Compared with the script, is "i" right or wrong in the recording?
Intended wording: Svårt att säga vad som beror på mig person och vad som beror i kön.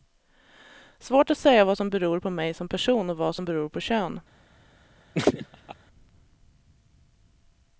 wrong